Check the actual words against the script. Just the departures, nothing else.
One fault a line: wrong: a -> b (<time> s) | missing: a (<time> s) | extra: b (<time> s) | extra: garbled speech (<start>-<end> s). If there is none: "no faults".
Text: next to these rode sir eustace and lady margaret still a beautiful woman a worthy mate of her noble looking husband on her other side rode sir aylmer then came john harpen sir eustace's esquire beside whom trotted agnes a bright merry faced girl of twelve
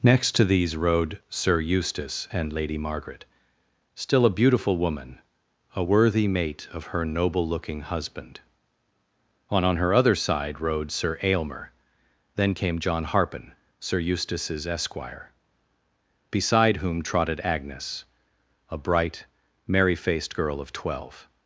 extra: on (9.6 s)